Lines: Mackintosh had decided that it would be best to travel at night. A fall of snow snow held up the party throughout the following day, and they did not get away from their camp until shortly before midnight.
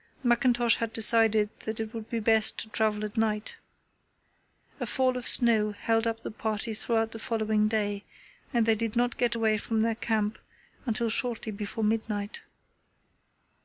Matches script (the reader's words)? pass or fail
fail